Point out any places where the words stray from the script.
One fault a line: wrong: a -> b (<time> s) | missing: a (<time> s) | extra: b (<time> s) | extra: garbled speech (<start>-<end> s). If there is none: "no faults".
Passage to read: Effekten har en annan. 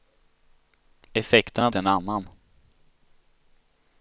no faults